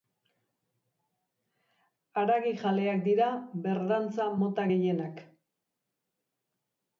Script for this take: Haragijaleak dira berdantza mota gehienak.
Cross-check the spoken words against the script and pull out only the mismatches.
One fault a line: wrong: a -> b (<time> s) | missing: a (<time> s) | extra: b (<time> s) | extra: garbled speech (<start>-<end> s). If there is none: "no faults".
no faults